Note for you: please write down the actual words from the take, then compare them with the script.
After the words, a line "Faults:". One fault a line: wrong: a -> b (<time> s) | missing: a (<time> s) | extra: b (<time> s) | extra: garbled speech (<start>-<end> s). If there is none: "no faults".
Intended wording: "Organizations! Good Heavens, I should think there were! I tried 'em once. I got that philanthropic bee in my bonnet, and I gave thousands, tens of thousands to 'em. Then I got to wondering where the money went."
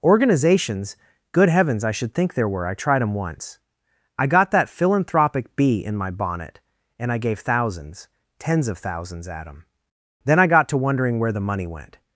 "Organizations! Good Heavens, I should think there were! I tried 'em once. I got that philanthropic bee in my bonnet, and I gave thousands, tens of thousands at 'em. Then I got to wondering where the money went."
Faults:
wrong: to -> at (9.3 s)